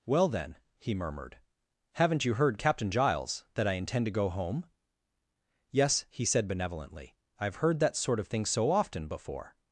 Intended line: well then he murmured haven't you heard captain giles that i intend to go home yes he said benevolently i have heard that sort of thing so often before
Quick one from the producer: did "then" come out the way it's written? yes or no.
yes